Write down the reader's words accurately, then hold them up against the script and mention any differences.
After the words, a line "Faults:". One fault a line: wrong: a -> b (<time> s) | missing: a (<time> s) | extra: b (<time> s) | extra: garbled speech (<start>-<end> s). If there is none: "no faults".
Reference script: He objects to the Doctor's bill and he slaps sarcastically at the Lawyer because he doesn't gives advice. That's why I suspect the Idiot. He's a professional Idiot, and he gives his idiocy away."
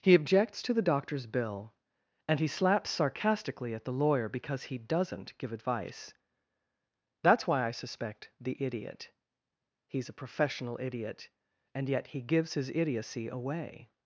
He objects to the Doctor's bill and he slaps sarcastically at the Lawyer because he doesn't give advice. That's why I suspect the Idiot. He's a professional Idiot, and yet he gives his idiocy away."
Faults:
wrong: gives -> give (5.4 s)
extra: yet (11.9 s)